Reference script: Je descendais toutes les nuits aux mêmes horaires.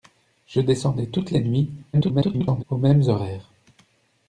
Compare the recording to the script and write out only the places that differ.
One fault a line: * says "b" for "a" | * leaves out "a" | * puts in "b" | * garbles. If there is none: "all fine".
* garbles